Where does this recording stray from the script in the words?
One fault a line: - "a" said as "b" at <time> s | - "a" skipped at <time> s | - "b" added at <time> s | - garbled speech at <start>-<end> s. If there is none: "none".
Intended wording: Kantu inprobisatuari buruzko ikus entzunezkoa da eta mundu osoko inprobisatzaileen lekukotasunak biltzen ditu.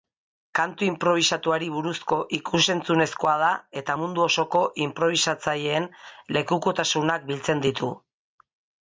none